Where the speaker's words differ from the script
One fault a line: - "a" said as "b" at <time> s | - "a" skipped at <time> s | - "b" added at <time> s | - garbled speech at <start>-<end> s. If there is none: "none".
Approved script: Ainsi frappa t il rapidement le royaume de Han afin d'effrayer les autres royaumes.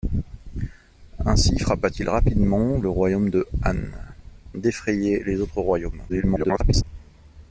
- "afin" skipped at 3.8 s
- garbled speech at 6.1-6.8 s